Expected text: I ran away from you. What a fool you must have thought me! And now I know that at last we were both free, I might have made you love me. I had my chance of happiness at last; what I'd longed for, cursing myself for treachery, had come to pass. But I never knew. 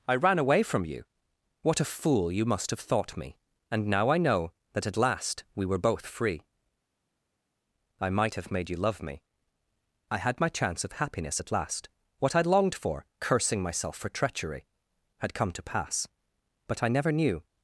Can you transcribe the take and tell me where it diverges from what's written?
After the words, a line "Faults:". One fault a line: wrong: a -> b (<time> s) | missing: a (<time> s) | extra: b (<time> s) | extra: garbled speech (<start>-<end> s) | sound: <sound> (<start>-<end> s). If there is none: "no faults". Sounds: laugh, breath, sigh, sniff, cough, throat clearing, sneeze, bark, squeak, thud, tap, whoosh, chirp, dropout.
I ran away from you. What a fool you must have thought me! And now I know that at last we were both free, I might have made you love me. I had my chance of happiness at last; what I'd longed for, cursing myself for treachery, had come to pass. But I never knew.
Faults:
no faults